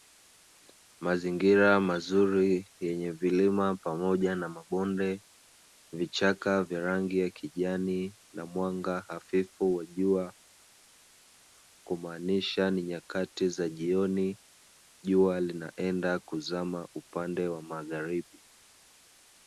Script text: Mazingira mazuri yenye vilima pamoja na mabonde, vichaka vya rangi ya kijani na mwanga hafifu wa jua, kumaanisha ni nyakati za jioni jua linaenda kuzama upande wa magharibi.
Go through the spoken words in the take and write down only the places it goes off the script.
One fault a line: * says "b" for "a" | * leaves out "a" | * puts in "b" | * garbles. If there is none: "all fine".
all fine